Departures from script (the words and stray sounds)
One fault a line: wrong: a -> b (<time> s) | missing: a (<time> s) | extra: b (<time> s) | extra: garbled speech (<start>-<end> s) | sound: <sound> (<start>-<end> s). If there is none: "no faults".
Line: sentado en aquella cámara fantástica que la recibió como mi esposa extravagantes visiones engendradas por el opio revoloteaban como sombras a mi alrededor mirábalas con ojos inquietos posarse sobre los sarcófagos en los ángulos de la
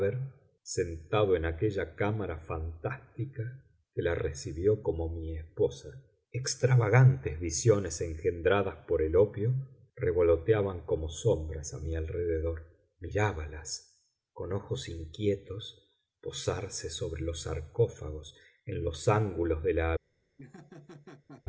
sound: laugh (20.4-21.4 s)